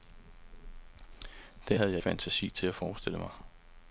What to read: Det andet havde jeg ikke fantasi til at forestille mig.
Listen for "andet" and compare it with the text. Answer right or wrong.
wrong